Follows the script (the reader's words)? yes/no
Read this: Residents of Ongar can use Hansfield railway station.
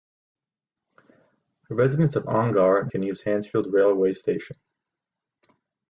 yes